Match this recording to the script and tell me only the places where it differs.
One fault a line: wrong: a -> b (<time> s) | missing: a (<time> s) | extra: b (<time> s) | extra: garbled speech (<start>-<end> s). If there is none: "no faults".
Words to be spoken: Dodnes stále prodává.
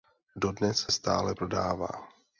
no faults